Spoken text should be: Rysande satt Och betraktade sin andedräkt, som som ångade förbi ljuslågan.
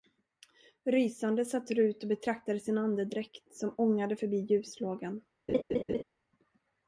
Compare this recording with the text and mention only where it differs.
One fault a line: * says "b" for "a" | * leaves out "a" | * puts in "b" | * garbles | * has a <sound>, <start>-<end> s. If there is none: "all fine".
* puts in "Rut"
* leaves out "som"
* has a laugh, 5.5-6.0 s